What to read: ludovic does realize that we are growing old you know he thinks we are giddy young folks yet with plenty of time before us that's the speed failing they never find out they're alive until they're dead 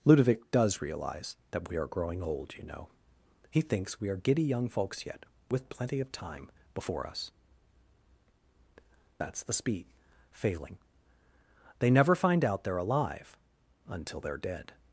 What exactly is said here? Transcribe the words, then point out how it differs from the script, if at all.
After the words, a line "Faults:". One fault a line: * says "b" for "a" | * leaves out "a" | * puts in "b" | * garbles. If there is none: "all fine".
ludovic does realize that we are growing old you know he thinks we are giddy young folks yet with plenty of time before us that's the speed failing they never find out they're alive until they're dead
Faults:
all fine